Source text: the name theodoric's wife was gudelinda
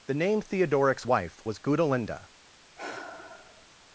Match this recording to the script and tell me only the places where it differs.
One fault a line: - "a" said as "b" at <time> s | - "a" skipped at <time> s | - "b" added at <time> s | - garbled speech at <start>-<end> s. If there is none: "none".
none